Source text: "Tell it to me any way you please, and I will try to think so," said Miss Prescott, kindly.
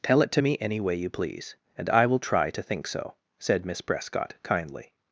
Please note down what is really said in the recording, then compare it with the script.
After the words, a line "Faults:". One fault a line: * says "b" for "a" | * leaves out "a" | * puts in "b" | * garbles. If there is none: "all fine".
"Tell it to me any way you please, and I will try to think so," said Miss Prescott, kindly.
Faults:
all fine